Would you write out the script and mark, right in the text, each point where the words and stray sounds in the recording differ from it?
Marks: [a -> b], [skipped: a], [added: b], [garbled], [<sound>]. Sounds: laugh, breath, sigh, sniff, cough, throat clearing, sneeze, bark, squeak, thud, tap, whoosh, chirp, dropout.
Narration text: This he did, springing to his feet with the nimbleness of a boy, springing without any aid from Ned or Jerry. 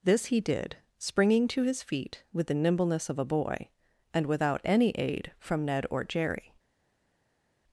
This he did, springing to his feet with the nimbleness of a boy, [springing -> and] without any aid from Ned or Jerry.